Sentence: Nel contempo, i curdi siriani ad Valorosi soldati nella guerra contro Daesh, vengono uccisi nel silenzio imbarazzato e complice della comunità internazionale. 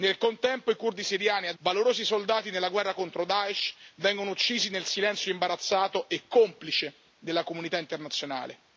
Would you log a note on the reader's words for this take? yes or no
no